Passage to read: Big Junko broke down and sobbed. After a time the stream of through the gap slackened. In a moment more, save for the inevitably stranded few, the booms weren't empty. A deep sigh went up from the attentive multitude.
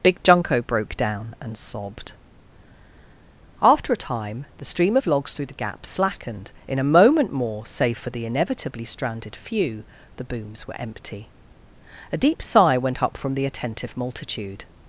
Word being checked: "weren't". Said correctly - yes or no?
no